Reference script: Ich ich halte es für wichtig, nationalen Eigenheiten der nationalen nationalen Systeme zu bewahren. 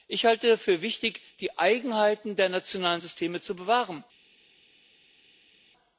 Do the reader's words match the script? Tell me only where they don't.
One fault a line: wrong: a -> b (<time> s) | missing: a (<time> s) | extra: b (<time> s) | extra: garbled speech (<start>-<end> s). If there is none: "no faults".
missing: ich (0.2 s)
wrong: nationalen -> die (1.4 s)
missing: nationalen (3.0 s)